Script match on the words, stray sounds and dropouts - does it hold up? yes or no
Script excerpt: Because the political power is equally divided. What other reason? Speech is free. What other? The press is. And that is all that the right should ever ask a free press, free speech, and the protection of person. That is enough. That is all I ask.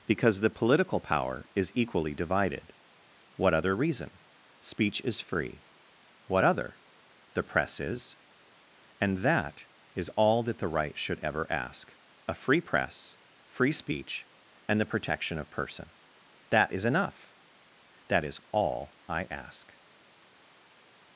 yes